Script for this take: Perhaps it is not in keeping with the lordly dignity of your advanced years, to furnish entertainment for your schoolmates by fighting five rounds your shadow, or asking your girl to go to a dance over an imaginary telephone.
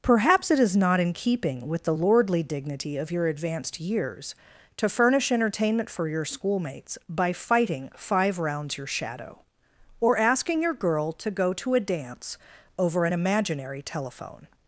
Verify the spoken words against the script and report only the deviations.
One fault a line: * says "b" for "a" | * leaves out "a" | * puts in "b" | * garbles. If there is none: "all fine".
all fine